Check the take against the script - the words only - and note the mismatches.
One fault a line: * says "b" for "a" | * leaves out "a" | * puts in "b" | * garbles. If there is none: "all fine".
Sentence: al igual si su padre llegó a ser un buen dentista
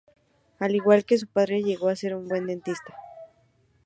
* says "que" for "si"